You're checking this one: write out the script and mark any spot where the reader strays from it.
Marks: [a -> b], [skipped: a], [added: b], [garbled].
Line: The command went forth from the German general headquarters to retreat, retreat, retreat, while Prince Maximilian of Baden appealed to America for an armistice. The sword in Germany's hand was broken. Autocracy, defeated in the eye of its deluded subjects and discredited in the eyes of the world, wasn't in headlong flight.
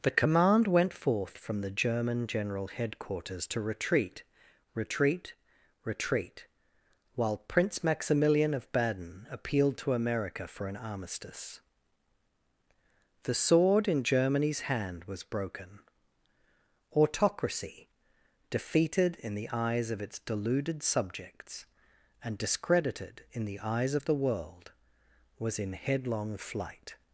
The command went forth from the German general headquarters to retreat, retreat, retreat, while Prince Maximilian of Baden appealed to America for an armistice. The sword in Germany's hand was broken. Autocracy, defeated in the [eye -> eyes] of its deluded subjects and discredited in the eyes of the world, [wasn't -> was] in headlong flight.